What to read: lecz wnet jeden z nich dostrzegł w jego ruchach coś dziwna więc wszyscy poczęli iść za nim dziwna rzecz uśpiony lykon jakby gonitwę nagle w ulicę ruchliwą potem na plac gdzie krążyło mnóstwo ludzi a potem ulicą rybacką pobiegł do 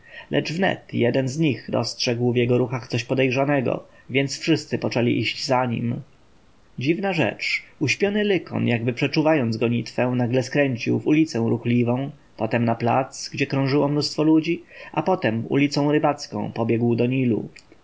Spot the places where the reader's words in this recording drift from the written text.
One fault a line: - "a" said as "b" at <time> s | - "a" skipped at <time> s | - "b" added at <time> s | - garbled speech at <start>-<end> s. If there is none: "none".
- "dziwna" said as "podejrzanego" at 3.0 s
- "przeczuwając" added at 8.9 s
- "skręcił" added at 10.4 s